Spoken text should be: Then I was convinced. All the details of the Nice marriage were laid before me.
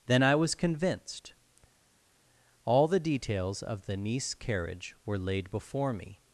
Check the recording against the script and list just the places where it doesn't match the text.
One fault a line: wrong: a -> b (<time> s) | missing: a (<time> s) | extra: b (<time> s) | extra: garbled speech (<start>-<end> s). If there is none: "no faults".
wrong: marriage -> carriage (4.3 s)